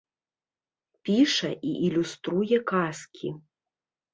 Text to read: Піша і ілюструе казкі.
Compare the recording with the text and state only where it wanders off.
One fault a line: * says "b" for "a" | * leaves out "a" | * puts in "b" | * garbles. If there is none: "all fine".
all fine